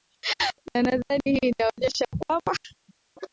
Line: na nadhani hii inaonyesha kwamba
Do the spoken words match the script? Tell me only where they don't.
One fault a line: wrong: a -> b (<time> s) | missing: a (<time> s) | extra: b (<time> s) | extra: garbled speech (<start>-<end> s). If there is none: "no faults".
no faults